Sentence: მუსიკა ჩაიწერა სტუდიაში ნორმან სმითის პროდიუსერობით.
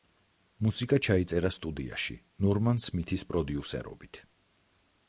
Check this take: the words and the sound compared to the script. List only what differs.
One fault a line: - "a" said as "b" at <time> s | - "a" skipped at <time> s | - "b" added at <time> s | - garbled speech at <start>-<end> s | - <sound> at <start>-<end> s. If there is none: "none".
none